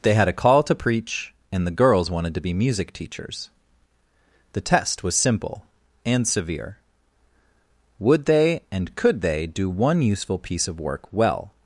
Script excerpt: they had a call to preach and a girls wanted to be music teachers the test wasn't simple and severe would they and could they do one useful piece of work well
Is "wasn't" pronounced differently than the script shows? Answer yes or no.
yes